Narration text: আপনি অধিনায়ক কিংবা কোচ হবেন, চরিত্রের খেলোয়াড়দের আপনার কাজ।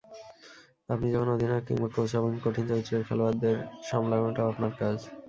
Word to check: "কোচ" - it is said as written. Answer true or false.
true